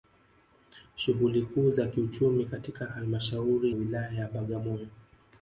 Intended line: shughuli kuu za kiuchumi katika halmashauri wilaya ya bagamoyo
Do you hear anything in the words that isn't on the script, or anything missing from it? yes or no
no